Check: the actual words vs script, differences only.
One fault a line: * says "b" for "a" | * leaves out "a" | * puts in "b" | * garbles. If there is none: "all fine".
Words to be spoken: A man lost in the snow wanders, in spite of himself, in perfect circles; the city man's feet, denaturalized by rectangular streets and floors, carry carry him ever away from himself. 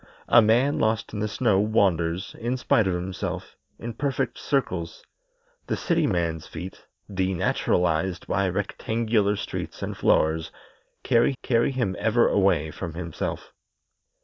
all fine